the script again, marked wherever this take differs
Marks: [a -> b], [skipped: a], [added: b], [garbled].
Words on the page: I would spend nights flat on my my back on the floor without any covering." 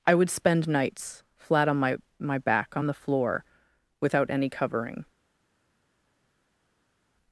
I would spend nights flat on my my back on the floor without any covering."